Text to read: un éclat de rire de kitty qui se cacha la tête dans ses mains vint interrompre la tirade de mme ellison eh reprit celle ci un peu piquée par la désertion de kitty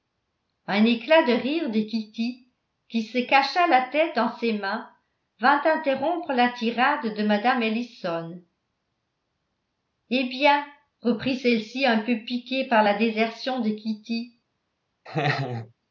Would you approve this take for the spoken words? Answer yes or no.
no